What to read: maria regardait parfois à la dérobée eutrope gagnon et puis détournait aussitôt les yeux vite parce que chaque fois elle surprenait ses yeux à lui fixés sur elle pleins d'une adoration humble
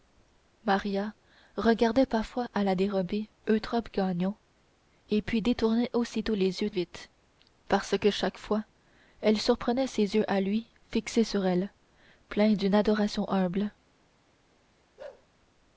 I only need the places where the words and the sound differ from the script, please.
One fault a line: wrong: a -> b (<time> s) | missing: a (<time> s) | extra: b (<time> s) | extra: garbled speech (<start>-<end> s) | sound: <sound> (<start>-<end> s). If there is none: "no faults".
sound: bark (15.0-15.3 s)